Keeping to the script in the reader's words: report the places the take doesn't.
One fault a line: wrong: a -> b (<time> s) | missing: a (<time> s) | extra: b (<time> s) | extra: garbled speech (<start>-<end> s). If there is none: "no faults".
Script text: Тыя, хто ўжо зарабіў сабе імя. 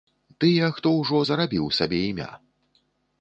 no faults